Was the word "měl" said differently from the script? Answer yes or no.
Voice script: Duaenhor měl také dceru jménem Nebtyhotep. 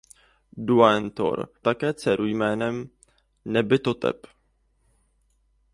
yes